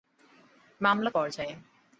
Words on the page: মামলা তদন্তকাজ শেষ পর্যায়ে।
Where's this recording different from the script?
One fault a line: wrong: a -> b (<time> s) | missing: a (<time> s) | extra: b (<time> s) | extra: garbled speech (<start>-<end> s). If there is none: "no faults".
missing: তদন্তকাজ শেষ (1.1 s)